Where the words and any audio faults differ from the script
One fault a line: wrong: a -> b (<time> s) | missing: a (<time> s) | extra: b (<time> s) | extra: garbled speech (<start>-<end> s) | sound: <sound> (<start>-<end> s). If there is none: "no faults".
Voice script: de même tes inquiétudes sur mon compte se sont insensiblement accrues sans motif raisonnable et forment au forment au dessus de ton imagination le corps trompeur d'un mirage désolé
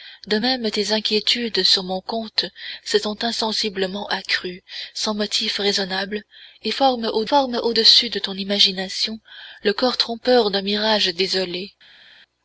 no faults